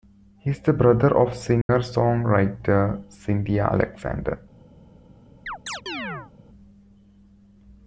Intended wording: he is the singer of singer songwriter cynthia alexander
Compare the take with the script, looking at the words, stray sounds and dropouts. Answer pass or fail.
fail